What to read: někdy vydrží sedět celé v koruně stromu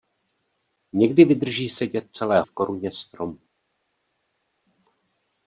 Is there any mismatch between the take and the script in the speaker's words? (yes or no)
no